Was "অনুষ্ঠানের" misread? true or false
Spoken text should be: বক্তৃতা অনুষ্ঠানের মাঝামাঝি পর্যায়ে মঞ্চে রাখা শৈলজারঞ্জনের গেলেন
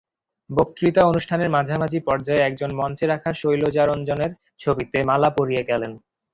false